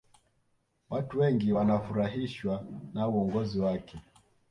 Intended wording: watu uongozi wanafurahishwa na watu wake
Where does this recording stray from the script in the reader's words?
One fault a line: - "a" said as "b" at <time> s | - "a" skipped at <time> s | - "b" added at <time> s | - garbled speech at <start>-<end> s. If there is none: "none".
- "uongozi" said as "wengi" at 1.2 s
- "watu" said as "uongozi" at 3.1 s